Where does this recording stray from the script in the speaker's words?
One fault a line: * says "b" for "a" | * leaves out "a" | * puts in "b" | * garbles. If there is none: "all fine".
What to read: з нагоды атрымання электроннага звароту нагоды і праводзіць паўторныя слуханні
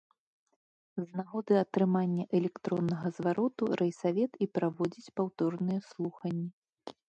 * says "райсавет" for "нагоды"